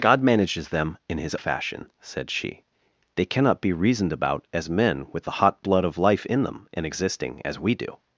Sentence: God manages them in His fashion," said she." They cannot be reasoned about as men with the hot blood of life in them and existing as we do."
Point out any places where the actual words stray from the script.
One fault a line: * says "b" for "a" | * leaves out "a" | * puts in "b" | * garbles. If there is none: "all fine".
all fine